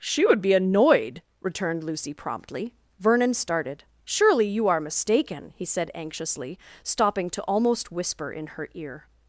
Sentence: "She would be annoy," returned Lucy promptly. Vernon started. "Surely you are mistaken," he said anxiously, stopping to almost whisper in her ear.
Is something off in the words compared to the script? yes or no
yes